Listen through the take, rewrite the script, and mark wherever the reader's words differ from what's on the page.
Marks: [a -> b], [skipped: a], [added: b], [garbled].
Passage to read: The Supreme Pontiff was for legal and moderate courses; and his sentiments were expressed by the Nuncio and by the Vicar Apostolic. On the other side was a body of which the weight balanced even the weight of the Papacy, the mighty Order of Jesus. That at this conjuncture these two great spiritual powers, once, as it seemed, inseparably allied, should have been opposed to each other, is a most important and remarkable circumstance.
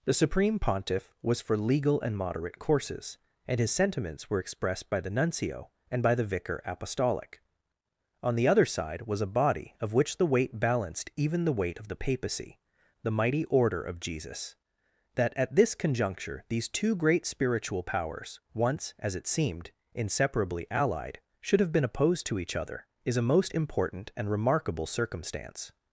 The Supreme Pontiff was for legal and moderate courses; and his sentiments were expressed by the Nuncio and by the Vicar Apostolic. On the other side was a body of which the weight balanced even the weight of the Papacy, the mighty Order of Jesus. That at this conjuncture these two great spiritual powers, once, as it seemed, inseparably allied, should have been opposed to each other, is a most important and remarkable circumstance.